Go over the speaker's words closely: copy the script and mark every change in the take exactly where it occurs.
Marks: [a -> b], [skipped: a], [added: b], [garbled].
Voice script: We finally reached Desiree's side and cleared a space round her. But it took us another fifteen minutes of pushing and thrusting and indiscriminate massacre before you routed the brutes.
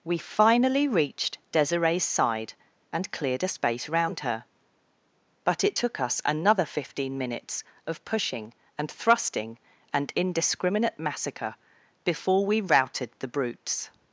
We finally reached Desiree's side and cleared a space round her. But it took us another fifteen minutes of pushing and thrusting and indiscriminate massacre before [you -> we] routed the brutes.